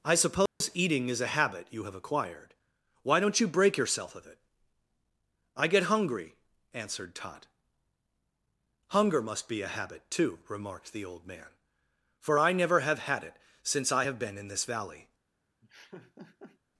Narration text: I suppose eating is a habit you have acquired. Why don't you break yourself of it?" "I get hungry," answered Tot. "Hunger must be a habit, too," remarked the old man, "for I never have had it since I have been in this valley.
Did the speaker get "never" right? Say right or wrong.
right